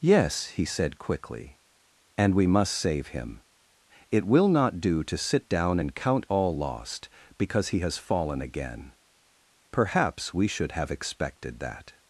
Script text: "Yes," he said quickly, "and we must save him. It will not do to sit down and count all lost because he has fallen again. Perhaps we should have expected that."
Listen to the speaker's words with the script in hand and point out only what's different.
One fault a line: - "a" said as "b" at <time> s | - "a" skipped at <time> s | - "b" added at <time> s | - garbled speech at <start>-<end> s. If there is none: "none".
none